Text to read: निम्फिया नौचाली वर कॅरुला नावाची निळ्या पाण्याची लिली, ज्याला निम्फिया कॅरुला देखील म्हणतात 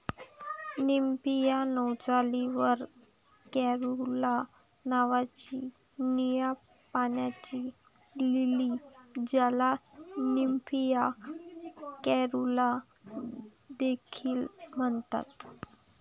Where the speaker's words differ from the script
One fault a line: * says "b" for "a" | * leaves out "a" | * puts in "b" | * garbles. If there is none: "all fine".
all fine